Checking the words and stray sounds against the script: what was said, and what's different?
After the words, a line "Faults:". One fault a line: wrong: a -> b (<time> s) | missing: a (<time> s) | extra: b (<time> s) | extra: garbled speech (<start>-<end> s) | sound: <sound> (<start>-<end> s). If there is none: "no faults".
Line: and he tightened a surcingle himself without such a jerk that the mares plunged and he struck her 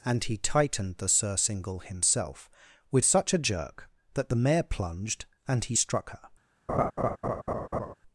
and he tightened the surcingle himself with such a jerk that the mare plunged and he struck her
Faults:
wrong: a -> the (1.0 s)
wrong: without -> with (2.9 s)
wrong: mares -> mare (4.4 s)
sound: laugh (6.7-7.9 s)